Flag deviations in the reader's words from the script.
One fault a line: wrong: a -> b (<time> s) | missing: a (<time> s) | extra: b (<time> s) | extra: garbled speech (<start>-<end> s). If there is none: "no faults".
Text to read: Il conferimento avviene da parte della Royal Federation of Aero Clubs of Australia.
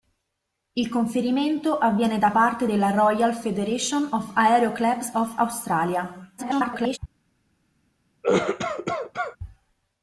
extra: garbled speech (6.4-7.0 s)